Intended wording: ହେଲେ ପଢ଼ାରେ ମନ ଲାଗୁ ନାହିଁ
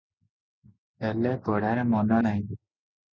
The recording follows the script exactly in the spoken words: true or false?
false